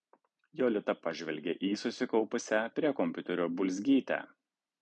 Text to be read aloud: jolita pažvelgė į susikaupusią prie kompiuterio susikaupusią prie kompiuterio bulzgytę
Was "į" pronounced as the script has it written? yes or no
yes